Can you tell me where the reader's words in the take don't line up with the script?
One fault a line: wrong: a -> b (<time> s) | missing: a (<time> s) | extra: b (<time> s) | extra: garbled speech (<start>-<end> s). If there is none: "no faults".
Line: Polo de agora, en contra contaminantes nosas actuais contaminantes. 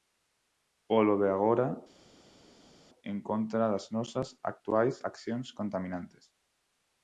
wrong: contaminantes -> das (3.7 s)
extra: accións (5.1 s)